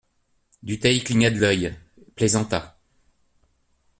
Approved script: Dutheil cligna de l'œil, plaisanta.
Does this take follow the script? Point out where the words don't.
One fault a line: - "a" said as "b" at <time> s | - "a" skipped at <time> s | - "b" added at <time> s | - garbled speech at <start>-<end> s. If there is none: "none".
none